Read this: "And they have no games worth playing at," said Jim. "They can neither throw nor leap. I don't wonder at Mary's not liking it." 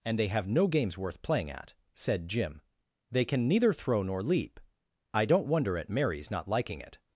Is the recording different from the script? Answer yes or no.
no